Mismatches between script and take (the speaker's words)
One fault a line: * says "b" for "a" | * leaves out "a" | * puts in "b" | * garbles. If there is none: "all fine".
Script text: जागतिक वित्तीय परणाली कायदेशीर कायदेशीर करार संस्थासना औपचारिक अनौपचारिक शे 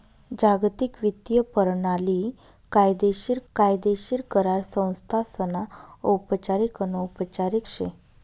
all fine